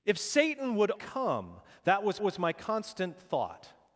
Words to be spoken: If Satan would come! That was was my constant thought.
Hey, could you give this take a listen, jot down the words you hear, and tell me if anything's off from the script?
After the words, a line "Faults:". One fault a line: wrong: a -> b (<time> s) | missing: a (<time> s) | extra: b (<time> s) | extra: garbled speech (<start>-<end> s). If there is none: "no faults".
If Satan would come! That was was my constant thought.
Faults:
no faults